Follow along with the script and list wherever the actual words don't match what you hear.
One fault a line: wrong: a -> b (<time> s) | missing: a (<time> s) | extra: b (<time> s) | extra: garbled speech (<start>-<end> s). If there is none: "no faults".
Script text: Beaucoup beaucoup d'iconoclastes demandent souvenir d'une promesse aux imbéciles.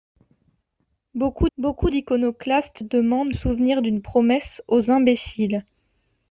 no faults